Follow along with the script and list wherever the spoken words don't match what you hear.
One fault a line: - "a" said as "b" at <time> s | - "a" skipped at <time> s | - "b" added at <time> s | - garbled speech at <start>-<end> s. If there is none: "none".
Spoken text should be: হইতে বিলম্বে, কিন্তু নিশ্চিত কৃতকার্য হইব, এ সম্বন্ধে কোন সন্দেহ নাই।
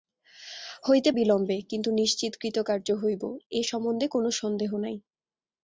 none